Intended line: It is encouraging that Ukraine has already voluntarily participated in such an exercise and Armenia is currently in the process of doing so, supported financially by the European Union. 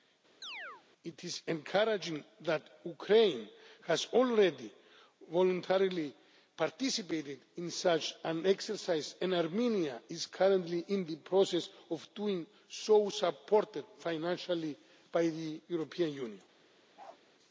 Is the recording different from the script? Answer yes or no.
no